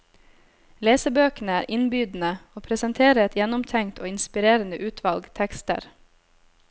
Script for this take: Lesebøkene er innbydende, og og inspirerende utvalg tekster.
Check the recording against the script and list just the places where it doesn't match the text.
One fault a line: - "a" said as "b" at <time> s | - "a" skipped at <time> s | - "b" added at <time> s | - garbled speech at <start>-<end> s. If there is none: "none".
- "presenterer et gjennomtenkt" added at 2.7 s